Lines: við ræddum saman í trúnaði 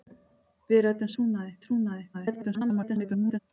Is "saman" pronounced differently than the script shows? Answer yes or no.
yes